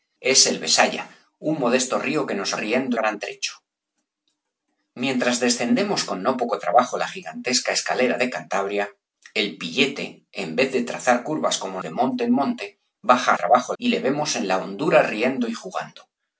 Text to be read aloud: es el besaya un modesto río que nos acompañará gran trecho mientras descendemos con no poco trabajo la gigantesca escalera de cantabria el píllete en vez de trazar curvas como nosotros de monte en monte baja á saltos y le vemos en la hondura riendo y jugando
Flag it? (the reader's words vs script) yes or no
yes